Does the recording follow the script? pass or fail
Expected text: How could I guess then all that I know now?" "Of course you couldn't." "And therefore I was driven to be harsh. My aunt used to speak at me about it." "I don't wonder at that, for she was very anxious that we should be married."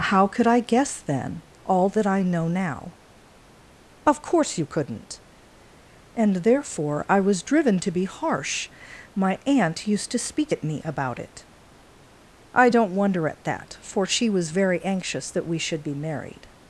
pass